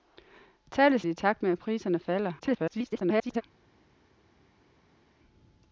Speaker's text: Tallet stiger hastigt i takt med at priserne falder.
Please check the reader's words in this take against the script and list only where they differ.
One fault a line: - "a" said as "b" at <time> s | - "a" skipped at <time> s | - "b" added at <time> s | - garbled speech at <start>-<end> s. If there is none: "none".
- "stiger hastigt" skipped at 1.0 s
- garbled speech at 2.4-3.4 s